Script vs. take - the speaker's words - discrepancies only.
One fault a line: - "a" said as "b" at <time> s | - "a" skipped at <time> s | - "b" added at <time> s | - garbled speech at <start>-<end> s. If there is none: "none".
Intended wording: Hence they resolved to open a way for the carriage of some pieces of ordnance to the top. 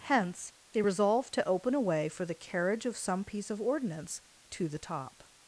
- "pieces" said as "piece" at 3.2 s